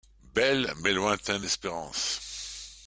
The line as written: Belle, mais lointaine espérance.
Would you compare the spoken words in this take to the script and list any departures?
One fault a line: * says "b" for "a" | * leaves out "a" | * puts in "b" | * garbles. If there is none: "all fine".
all fine